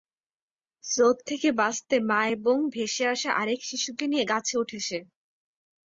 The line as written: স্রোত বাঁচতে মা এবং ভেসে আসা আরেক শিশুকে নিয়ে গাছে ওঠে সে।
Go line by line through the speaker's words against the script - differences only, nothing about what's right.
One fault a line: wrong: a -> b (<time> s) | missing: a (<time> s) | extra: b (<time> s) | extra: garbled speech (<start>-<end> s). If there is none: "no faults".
extra: থেকে (1.2 s)